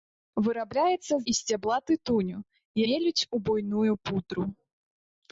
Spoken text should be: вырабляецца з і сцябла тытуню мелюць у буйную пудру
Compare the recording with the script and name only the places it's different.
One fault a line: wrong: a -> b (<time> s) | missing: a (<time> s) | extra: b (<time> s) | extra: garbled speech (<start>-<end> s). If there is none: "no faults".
no faults